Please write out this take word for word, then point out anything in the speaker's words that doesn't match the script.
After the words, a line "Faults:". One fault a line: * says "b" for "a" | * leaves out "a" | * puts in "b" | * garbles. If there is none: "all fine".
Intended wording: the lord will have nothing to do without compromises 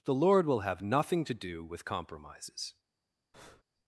the lord will have nothing to do with compromises
Faults:
* says "with" for "without"